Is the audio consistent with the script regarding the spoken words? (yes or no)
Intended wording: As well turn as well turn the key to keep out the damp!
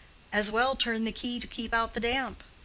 no